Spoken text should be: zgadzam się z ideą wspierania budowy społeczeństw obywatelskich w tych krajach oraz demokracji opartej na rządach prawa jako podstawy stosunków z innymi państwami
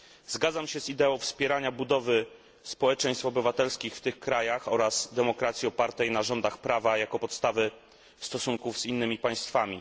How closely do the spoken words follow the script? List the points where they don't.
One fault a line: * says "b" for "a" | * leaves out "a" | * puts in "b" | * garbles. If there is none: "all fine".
all fine